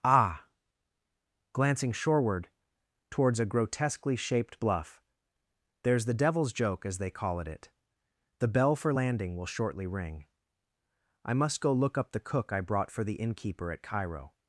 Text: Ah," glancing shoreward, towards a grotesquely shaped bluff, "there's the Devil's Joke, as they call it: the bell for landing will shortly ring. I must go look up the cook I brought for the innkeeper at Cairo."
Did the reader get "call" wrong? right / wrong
right